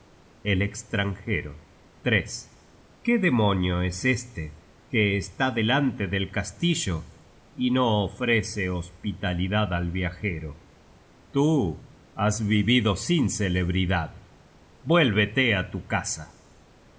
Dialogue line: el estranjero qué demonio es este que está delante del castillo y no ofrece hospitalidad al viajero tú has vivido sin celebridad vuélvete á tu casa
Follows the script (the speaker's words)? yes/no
yes